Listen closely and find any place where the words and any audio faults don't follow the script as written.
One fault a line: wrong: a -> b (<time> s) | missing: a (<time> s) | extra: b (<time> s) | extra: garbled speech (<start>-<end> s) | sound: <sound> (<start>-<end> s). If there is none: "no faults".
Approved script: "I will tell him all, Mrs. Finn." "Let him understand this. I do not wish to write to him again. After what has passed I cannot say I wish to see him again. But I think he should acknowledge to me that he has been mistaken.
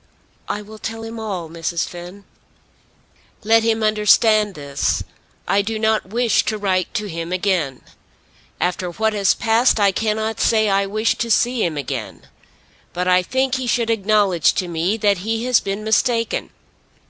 no faults